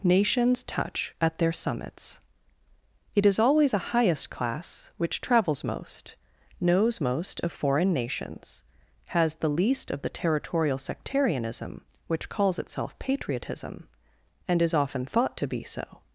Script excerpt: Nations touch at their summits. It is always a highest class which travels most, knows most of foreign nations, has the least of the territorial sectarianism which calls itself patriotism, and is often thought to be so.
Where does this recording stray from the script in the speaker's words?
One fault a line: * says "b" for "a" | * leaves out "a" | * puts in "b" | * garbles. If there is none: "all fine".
all fine